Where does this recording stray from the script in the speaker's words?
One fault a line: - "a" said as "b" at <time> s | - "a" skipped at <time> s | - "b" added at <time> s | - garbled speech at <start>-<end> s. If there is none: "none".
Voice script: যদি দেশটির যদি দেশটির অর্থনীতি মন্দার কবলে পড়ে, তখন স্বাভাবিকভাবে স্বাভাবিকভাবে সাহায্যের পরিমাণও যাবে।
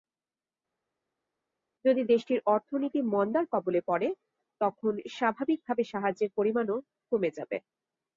- "যদি দেশটির" skipped at 2.4 s
- "স্বাভাবিকভাবে" skipped at 5.8 s
- "কমে" added at 7.1 s